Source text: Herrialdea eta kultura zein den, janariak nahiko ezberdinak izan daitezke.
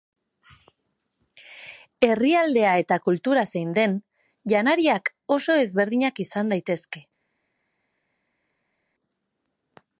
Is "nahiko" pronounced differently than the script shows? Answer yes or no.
yes